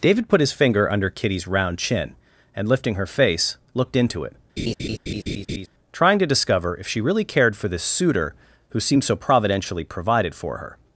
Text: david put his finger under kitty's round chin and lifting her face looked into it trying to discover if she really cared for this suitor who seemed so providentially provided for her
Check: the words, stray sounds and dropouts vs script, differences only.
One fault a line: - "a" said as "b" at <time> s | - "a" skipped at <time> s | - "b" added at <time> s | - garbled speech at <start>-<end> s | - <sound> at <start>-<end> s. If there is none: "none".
- laugh at 4.6-5.7 s